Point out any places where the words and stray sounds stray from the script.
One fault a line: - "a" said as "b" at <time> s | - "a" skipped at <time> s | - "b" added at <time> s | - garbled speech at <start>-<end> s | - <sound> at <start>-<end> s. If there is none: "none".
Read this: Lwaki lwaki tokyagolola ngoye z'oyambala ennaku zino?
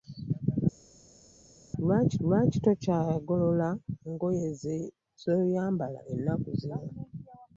none